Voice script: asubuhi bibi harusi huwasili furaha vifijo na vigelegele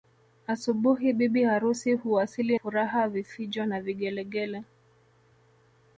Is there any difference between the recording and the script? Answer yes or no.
no